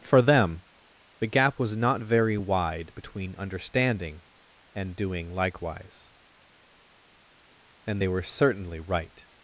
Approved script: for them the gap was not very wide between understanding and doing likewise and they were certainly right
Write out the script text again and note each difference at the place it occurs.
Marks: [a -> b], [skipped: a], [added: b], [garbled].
for them the gap was not very wide between understanding and doing likewise and they were certainly right